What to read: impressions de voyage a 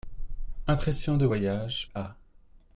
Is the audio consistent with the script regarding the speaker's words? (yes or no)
yes